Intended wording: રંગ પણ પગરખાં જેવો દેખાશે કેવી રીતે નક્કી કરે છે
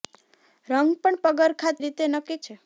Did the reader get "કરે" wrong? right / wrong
wrong